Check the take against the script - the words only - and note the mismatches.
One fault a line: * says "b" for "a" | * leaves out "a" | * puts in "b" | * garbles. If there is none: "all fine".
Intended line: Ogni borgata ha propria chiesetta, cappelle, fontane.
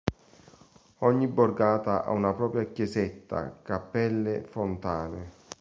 * puts in "una"